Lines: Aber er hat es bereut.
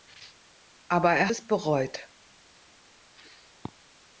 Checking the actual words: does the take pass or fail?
fail